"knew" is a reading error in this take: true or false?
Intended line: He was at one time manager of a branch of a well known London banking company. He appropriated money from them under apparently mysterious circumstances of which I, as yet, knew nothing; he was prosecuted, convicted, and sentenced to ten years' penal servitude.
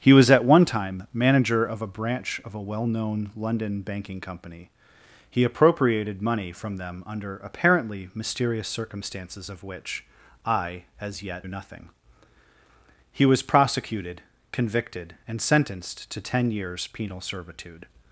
true